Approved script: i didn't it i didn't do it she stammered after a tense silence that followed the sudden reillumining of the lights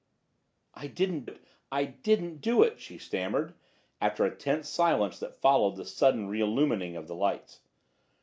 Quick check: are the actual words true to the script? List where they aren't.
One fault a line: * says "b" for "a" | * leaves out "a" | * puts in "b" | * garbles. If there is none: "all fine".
all fine